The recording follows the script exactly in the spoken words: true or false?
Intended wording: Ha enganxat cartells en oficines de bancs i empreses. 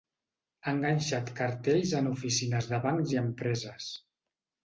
true